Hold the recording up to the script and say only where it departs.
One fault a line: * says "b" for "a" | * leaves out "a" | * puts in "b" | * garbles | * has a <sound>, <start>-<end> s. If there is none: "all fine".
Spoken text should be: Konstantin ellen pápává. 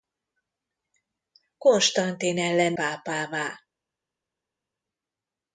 all fine